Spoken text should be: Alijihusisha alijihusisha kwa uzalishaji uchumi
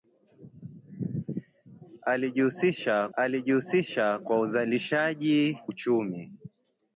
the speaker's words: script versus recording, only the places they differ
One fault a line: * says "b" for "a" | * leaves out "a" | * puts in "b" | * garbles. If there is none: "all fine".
all fine